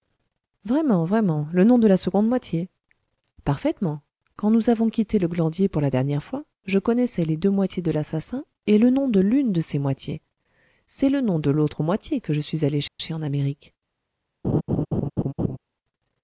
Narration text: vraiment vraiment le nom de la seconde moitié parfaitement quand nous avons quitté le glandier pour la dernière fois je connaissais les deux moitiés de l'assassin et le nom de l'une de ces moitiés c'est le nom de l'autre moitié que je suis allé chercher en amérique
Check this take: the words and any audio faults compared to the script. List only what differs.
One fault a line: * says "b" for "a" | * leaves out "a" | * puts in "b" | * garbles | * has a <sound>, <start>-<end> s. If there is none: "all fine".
* has a dropout, 12.9-13.0 s
* has a laugh, 14.4-15.6 s